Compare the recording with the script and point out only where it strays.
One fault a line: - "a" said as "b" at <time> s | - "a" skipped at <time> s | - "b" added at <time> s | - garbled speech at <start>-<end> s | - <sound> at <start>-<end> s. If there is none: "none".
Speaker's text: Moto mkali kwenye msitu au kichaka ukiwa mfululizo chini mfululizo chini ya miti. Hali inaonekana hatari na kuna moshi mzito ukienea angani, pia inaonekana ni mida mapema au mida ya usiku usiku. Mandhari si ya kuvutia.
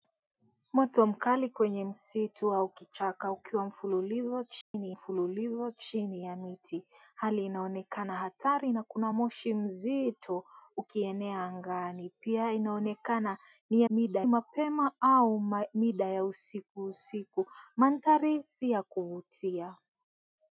- dropout at 4.6-4.7 s